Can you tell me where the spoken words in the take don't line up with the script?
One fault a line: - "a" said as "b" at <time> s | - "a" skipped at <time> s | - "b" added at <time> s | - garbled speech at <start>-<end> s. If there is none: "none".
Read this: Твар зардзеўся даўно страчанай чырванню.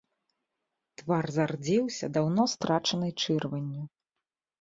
none